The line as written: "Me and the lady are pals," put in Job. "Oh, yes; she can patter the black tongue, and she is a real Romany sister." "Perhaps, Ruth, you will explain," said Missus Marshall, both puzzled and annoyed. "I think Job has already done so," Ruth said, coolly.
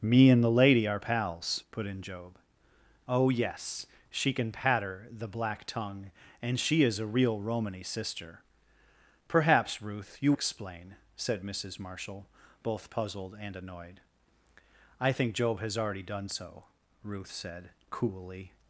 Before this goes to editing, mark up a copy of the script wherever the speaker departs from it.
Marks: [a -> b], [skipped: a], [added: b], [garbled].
"Me and the lady are pals," put in Job. "Oh, yes; she can patter the black tongue, and she is a real Romany sister." "Perhaps, Ruth, you [skipped: will] explain," said Missus Marshall, both puzzled and annoyed. "I think Job has already done so," Ruth said, coolly.